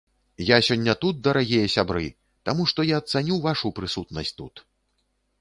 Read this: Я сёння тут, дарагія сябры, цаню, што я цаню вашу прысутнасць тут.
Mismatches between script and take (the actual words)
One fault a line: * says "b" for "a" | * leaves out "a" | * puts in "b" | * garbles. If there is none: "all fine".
* says "таму" for "цаню"